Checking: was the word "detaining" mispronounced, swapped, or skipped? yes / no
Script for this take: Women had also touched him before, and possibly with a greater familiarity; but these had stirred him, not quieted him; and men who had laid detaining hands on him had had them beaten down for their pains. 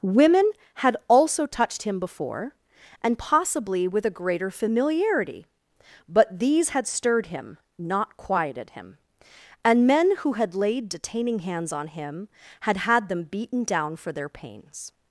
no